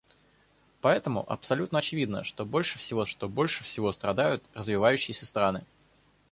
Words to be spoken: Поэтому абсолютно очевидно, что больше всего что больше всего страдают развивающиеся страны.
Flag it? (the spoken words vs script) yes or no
no